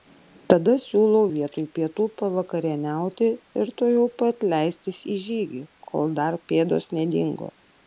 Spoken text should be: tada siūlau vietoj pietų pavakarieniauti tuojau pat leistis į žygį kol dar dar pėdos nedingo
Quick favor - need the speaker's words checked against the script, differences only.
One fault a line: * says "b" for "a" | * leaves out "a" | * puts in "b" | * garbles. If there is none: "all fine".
* puts in "ir"
* leaves out "dar"